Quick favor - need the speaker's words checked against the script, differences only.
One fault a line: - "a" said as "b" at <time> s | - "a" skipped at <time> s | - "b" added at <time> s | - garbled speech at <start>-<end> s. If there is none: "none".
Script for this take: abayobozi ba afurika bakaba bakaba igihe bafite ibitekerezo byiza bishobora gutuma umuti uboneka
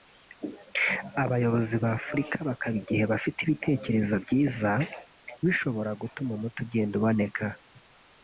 - "bakaba" skipped at 2.8 s
- "ugenda" added at 6.7 s